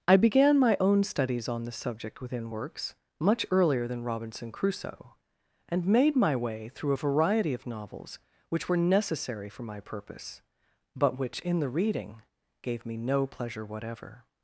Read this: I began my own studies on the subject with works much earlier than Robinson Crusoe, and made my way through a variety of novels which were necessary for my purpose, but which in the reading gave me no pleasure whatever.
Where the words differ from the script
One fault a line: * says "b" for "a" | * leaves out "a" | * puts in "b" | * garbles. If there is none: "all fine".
* says "within" for "with"